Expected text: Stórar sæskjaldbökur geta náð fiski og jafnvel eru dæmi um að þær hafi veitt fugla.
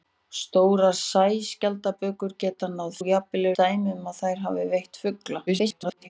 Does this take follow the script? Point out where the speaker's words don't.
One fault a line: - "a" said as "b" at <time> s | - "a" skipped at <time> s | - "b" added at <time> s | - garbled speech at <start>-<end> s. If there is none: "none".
- "fiski" skipped at 3.0 s
- "eru" skipped at 3.5 s
- garbled speech at 5.5-6.1 s